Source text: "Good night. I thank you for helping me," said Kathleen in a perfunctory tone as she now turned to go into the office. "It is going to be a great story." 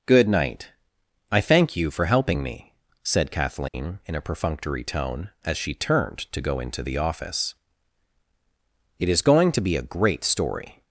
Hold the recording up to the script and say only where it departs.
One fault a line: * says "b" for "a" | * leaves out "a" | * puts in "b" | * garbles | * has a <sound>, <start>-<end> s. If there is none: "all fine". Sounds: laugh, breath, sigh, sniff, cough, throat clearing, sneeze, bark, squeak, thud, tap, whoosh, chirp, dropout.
* has a dropout, 3.7-3.7 s
* leaves out "now"